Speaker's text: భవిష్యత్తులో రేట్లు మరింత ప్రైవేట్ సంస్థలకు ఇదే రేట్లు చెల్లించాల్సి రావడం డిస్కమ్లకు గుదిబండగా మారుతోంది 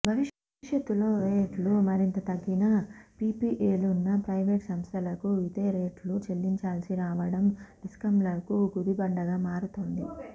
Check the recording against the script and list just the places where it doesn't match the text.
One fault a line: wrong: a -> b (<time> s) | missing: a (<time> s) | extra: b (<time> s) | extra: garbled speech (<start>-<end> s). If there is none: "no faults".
extra: తగ్గినా పీపీఏలున్న (2.3 s)